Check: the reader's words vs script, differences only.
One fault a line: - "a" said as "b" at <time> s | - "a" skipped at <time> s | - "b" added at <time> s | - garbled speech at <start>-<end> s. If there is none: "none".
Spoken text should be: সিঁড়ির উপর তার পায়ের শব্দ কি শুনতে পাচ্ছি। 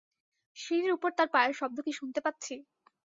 none